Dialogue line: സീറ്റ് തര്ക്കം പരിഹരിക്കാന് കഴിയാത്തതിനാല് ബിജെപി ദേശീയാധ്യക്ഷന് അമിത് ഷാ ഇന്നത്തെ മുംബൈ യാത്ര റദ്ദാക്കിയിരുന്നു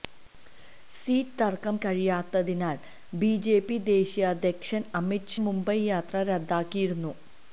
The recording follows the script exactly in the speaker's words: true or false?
false